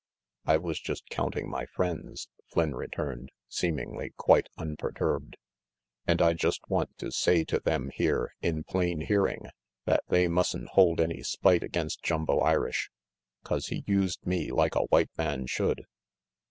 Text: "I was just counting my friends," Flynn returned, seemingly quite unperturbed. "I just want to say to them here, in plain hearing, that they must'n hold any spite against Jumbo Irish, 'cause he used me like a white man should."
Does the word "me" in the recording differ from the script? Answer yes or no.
no